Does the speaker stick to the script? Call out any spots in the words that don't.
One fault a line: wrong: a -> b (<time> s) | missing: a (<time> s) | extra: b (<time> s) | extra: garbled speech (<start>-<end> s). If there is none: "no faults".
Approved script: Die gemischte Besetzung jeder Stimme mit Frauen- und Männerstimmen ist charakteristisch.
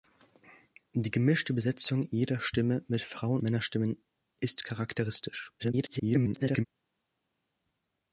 missing: und (3.4 s)
extra: garbled speech (5.6-6.6 s)